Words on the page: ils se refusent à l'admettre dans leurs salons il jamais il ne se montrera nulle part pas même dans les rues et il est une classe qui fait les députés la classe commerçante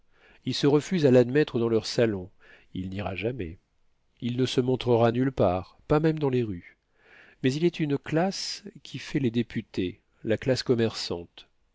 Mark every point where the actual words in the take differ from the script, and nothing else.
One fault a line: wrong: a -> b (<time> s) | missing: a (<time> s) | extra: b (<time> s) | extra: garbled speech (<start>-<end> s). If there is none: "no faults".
extra: n'ira (2.9 s)
wrong: et -> mais (7.4 s)